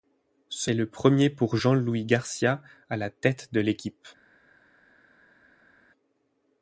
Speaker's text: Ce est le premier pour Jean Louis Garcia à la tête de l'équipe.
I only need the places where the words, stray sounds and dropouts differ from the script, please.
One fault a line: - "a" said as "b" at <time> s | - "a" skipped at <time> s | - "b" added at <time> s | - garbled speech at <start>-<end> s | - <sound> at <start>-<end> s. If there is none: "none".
none